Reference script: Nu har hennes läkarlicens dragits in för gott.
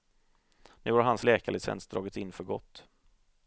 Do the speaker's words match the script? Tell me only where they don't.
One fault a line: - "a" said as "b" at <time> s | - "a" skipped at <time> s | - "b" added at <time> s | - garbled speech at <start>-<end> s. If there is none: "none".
- "hennes" said as "hans" at 1.0 s